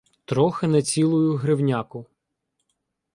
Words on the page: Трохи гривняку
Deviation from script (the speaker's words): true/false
true